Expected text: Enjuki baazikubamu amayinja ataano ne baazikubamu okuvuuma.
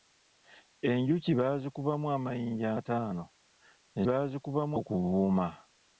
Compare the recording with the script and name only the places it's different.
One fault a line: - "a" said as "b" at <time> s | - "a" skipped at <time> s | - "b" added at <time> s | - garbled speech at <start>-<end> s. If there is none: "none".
none